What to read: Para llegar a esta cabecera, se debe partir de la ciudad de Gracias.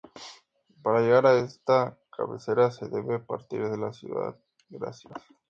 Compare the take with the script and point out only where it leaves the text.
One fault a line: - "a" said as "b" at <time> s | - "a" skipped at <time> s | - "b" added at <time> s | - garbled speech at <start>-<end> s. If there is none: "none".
- "de" skipped at 4.3 s